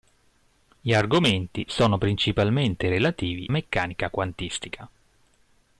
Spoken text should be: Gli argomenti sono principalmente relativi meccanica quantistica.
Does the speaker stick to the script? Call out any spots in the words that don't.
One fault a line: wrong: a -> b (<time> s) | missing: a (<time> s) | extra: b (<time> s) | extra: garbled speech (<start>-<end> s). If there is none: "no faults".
no faults